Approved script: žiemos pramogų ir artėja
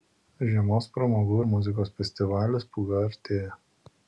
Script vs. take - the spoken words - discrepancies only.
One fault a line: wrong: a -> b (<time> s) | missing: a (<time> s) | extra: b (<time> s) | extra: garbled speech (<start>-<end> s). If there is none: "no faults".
extra: muzikos festivalis pūga (1.5 s)